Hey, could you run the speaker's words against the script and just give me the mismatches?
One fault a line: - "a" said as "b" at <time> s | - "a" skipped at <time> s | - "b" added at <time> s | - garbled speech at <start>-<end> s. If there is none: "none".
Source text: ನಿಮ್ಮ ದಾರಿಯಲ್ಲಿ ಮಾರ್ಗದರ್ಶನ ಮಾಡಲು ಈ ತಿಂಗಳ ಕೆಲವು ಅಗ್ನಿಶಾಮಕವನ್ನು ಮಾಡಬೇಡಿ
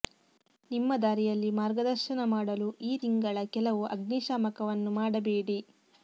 none